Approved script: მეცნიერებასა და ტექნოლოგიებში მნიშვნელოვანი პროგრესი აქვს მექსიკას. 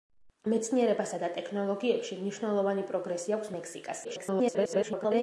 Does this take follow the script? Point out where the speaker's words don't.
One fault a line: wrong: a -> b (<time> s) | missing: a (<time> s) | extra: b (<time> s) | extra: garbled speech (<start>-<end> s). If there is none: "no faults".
extra: garbled speech (4.0-5.2 s)